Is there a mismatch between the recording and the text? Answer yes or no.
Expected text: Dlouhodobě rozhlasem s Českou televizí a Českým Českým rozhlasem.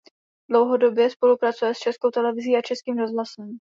yes